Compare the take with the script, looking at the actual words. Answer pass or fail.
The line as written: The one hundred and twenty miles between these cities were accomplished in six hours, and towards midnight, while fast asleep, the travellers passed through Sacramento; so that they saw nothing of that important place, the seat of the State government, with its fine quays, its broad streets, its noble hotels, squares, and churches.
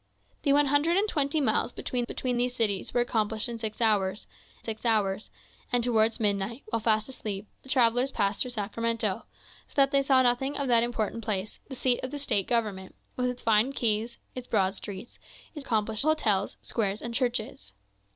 fail